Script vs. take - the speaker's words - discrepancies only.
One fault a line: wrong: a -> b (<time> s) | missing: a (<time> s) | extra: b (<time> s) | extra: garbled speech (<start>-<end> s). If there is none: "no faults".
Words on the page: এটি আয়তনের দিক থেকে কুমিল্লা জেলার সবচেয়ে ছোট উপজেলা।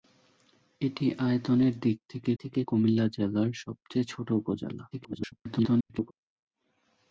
extra: থেকে (2.4 s)
extra: garbled speech (4.9-6.1 s)